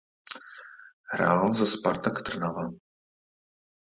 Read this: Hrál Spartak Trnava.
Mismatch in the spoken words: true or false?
true